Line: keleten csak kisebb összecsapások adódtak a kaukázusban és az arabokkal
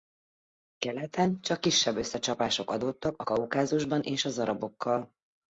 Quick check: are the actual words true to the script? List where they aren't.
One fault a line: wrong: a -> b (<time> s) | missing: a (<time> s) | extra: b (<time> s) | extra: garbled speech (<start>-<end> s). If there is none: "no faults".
no faults